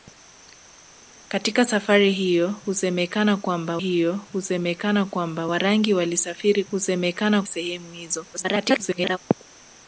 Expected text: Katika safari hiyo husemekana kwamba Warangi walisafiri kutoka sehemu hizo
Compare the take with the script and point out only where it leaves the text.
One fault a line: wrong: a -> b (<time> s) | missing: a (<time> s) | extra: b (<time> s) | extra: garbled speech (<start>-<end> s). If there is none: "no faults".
extra: hiyo husemekana kwamba (3.8 s)
wrong: kutoka -> husemekana (6.7 s)
extra: garbled speech (8.3-9.2 s)